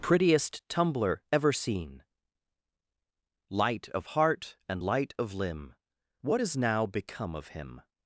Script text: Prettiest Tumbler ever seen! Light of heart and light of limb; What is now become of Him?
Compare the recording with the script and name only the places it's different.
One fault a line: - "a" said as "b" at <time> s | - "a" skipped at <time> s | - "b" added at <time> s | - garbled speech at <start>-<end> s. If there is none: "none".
none